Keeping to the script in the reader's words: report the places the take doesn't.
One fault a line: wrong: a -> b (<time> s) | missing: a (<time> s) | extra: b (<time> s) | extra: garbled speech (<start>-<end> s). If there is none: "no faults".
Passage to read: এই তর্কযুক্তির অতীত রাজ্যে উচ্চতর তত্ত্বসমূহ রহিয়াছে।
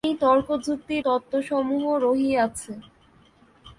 missing: অতীত রাজ্যে উচ্চতর (1.0 s)